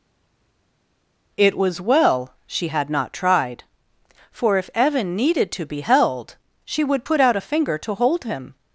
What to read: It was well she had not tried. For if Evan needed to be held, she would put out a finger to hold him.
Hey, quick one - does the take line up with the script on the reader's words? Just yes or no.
yes